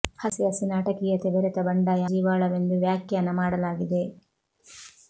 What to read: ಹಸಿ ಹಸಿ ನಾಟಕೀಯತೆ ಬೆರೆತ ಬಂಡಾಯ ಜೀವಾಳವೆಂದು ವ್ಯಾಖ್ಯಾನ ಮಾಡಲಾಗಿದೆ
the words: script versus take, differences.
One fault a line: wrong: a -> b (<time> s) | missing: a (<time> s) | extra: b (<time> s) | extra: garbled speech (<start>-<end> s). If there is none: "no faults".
no faults